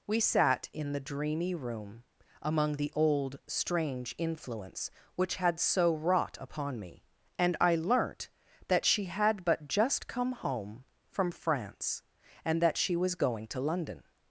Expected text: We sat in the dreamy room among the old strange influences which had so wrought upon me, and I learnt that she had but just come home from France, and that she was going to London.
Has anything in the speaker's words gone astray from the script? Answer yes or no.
yes